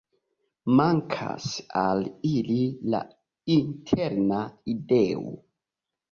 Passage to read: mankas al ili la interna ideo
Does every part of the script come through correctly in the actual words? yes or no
yes